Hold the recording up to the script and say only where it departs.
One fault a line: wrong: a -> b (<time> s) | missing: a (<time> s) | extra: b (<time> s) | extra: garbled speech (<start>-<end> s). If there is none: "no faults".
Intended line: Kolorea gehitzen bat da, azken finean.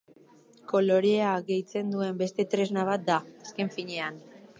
extra: duen beste tresna (2.0 s)